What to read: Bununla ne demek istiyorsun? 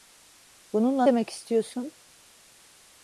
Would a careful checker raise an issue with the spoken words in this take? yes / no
yes